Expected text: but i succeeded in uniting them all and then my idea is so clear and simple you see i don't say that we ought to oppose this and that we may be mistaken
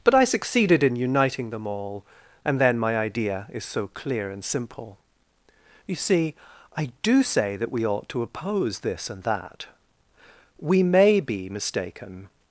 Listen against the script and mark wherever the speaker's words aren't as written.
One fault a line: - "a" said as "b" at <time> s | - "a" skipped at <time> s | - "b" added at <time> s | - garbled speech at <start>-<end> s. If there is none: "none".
- "don't" said as "do" at 7.0 s